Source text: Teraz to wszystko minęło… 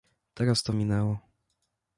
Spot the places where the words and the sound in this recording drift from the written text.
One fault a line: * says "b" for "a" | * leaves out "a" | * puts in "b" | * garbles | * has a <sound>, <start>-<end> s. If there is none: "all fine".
* leaves out "wszystko"